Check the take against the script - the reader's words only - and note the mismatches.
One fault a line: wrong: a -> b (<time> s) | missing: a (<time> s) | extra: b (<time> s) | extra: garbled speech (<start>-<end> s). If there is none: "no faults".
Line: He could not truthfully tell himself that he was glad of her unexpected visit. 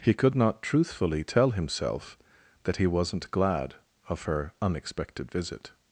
wrong: was -> wasn't (2.9 s)